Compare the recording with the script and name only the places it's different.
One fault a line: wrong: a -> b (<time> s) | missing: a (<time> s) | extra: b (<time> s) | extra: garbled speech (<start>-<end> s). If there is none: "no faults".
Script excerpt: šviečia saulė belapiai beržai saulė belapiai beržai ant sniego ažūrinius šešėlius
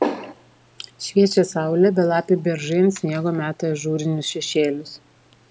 missing: saulė belapiai beržai (2.8 s)
extra: meta (3.4 s)